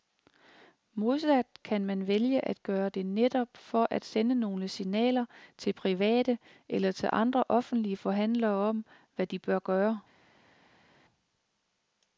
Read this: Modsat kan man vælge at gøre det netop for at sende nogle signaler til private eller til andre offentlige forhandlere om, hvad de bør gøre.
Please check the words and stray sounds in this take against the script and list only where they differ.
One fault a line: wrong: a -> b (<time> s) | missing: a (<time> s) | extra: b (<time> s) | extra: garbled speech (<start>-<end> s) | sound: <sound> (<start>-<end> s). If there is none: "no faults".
no faults